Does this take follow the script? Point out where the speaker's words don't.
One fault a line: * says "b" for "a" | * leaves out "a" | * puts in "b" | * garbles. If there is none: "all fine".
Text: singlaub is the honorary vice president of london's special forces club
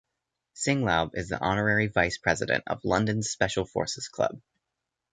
all fine